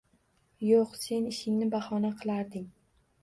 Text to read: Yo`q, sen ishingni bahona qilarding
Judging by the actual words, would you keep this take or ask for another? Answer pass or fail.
pass